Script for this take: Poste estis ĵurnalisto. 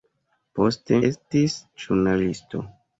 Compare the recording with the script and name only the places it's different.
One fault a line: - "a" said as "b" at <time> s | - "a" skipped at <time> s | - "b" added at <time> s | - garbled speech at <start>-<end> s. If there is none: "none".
none